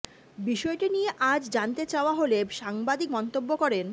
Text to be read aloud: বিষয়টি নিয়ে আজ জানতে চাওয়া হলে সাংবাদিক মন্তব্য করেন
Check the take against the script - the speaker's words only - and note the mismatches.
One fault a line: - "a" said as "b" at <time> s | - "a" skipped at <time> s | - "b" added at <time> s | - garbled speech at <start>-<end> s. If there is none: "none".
none